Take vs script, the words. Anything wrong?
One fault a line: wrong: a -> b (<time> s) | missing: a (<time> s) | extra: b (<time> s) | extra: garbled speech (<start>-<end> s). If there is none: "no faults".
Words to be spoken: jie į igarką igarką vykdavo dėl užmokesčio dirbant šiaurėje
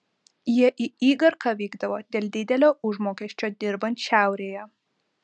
missing: igarką (1.5 s)
extra: didelio (2.4 s)